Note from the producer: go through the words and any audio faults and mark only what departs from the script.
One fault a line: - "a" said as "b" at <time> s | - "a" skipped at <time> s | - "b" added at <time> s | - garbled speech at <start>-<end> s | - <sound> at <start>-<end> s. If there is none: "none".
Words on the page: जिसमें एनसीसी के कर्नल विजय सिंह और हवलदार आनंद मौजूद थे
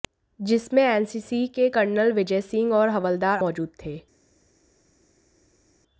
- "आनंद" skipped at 3.4 s